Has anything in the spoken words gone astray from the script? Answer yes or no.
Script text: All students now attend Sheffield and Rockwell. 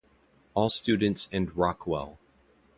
yes